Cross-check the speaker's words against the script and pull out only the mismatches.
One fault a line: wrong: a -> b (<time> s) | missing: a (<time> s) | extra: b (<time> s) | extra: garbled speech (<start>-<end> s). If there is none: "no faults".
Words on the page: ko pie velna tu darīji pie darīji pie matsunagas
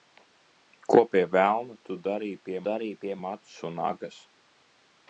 no faults